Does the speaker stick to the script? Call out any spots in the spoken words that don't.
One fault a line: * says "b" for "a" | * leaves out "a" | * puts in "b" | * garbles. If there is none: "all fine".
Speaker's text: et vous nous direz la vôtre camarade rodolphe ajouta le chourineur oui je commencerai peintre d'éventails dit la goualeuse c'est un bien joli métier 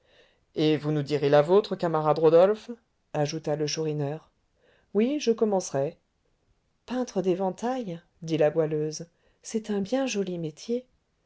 all fine